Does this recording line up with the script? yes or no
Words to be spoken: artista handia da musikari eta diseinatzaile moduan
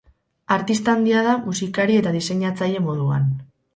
yes